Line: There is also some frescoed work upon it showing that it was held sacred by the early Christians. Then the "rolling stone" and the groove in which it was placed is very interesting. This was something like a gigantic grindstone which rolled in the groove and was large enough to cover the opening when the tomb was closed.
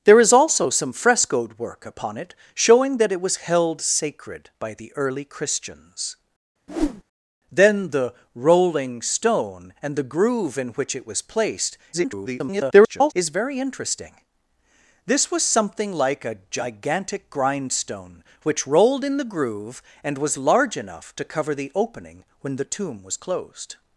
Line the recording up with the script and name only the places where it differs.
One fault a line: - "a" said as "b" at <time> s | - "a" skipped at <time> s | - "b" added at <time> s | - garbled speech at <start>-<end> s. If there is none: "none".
- garbled speech at 11.9-13.1 s